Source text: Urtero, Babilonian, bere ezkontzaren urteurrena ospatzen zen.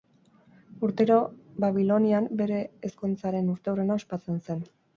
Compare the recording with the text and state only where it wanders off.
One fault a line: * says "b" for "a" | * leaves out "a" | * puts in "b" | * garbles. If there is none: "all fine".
all fine